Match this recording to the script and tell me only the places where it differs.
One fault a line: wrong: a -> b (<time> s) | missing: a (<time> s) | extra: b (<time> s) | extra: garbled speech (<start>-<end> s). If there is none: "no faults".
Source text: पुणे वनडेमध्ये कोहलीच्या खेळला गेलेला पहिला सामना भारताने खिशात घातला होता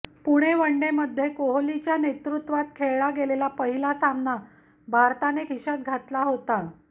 extra: नेतृत्वात (2.0 s)